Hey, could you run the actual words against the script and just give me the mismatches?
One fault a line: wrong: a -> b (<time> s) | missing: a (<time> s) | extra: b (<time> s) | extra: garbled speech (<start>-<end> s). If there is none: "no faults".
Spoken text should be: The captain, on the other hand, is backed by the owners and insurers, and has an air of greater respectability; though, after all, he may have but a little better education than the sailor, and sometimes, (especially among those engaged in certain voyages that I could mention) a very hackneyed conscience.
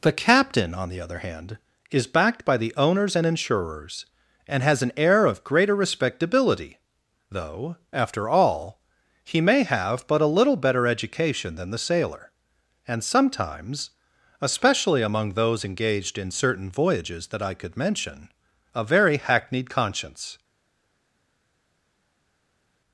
no faults